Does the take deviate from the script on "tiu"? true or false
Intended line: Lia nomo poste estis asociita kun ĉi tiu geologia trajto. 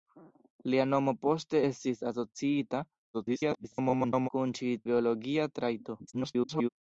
true